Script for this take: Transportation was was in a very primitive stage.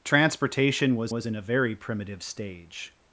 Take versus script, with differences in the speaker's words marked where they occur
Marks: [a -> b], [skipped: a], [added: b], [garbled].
Transportation was was in a very primitive stage.